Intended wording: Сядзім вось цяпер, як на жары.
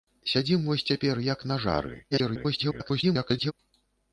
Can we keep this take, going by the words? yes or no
no